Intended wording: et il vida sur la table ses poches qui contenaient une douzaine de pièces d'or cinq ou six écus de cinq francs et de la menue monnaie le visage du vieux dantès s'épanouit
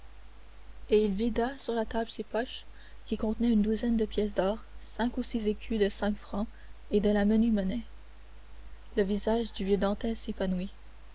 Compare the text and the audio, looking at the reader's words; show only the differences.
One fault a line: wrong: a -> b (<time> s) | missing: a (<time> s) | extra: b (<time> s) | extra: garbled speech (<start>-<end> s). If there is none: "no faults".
no faults